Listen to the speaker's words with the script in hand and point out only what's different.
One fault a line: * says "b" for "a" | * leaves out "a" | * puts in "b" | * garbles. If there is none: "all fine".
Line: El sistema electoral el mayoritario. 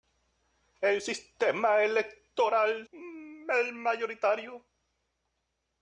all fine